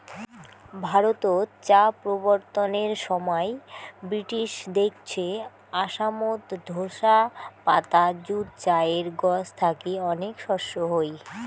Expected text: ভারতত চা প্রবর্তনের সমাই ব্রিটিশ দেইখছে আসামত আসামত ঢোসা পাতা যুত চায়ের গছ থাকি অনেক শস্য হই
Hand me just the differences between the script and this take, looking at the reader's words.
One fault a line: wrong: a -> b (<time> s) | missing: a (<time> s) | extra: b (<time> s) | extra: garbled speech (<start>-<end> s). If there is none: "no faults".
missing: আসামত (6.4 s)